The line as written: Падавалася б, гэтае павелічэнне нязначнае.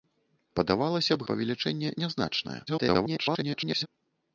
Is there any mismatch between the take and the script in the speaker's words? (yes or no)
yes